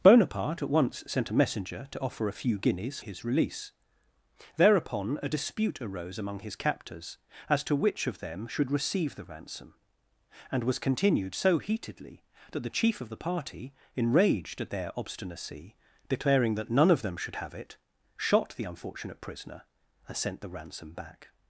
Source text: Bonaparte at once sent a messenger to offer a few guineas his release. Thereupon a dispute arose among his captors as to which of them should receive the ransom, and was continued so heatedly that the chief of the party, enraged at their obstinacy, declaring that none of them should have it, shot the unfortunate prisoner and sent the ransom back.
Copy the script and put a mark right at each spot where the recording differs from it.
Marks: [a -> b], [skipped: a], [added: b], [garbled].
Bonaparte at once sent a messenger to offer a few guineas his release. Thereupon a dispute arose among his captors as to which of them should receive the ransom, and was continued so heatedly that the chief of the party, enraged at their obstinacy, declaring that none of them should have it, shot the unfortunate prisoner and sent the ransom back.